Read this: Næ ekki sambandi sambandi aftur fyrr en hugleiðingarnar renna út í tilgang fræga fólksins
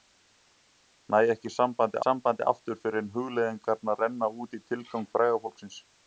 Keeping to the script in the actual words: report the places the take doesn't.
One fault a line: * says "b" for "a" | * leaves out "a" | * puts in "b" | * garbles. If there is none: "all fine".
all fine